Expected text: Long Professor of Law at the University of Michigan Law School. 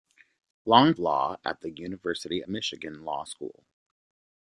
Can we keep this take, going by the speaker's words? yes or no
no